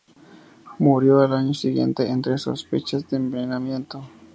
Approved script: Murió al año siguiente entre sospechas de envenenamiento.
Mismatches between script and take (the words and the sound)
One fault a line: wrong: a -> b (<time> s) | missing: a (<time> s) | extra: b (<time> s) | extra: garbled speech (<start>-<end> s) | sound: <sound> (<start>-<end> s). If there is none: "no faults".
no faults